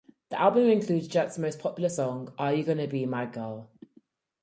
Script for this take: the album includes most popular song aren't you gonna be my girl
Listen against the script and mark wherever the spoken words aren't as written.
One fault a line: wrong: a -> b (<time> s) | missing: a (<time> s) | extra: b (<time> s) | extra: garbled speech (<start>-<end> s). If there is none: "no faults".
extra: jet's (1.1 s)
wrong: aren't -> are (2.4 s)